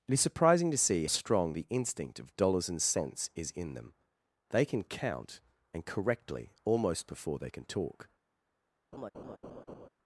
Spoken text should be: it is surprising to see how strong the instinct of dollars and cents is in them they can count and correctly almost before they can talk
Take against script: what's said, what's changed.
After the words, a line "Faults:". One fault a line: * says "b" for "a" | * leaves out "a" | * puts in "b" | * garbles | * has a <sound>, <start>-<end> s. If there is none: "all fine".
it is surprising to see strong the instinct of dollars and cents is in them they can count and correctly almost before they can talk
Faults:
* leaves out "how"
* has a laugh, 8.9-9.9 s